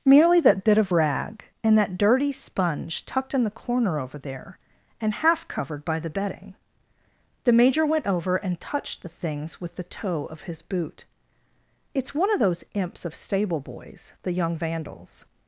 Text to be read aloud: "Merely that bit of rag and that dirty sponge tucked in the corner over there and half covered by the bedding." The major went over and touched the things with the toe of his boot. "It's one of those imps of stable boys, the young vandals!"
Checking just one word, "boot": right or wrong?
right